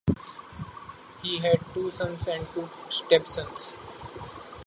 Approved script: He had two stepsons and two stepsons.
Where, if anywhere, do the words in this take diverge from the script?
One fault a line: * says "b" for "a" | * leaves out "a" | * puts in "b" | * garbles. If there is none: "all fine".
* says "sons" for "stepsons"